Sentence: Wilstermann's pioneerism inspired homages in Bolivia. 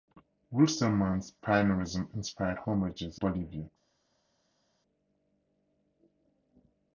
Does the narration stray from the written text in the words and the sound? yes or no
yes